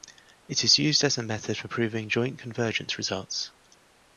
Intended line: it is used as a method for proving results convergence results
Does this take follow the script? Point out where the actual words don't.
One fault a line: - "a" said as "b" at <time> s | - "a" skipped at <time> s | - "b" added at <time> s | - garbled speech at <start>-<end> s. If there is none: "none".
- "results" said as "joint" at 2.1 s